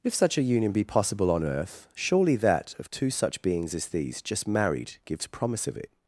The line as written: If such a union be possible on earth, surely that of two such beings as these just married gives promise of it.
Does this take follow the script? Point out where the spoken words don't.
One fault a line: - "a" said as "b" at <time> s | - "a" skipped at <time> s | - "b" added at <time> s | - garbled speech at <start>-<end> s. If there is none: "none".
none